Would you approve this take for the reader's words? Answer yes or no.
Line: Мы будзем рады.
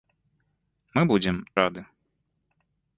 yes